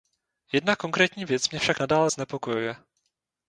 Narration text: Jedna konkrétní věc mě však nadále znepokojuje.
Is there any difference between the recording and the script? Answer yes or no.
no